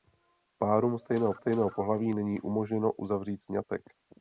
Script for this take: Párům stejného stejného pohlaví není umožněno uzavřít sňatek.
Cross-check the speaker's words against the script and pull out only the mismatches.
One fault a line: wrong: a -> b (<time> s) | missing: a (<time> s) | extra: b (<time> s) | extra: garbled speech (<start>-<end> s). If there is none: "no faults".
no faults